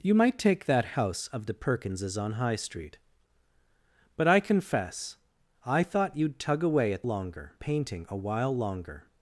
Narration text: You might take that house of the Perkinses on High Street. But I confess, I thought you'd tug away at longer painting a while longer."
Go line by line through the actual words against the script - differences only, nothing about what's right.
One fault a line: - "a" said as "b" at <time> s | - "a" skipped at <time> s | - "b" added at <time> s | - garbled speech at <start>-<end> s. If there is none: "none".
none